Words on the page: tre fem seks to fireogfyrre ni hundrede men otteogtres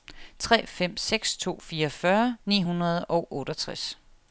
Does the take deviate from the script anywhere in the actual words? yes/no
yes